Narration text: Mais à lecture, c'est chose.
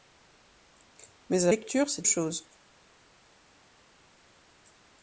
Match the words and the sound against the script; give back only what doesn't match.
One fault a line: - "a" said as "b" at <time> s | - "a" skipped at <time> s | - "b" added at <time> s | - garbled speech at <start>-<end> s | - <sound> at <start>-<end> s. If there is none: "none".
none